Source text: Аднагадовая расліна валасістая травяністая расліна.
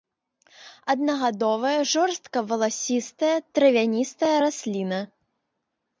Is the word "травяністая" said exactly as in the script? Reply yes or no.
yes